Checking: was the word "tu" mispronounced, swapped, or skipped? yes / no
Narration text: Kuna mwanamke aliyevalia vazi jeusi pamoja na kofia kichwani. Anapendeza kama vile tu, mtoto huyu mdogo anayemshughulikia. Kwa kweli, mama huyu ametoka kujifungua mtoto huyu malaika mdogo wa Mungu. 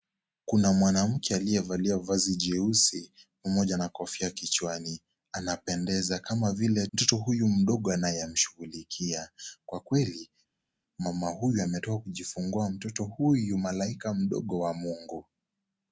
yes